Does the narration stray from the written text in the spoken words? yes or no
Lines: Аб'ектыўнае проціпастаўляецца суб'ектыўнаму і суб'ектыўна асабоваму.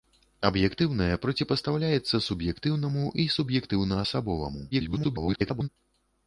yes